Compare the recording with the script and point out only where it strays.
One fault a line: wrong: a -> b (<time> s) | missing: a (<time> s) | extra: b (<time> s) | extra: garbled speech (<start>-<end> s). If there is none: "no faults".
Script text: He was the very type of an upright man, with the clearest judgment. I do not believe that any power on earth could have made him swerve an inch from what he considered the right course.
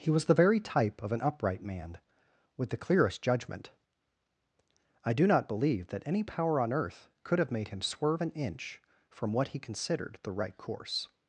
no faults